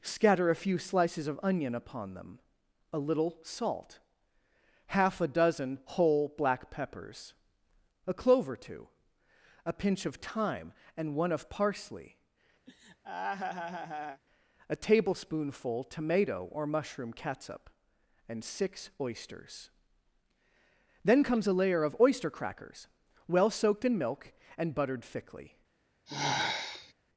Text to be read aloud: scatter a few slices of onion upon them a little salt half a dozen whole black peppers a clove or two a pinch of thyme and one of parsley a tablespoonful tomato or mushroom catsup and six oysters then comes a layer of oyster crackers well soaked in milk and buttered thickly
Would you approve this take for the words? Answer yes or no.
yes